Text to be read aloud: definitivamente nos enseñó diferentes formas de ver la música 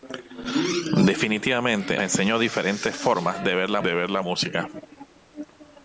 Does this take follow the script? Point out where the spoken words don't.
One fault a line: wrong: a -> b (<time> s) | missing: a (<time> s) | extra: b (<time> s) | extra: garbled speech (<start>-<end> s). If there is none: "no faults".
missing: nos (2.0 s)
extra: de ver la (3.8 s)